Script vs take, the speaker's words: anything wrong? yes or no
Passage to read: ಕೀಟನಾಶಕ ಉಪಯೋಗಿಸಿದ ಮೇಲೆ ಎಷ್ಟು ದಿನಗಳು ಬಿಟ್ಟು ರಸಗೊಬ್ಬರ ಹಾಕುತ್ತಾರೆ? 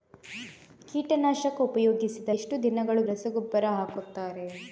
yes